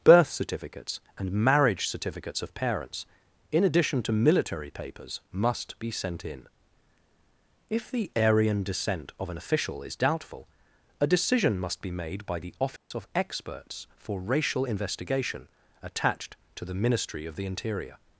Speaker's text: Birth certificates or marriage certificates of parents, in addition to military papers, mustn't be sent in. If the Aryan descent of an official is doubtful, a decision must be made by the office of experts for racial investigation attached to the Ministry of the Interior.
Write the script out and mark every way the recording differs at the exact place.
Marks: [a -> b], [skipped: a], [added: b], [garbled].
Birth certificates [or -> and] marriage certificates of parents, in addition to military papers, [mustn't -> must] be sent in. If the Aryan descent of an official is doubtful, a decision must be made by the office of experts for racial investigation attached to the Ministry of the Interior.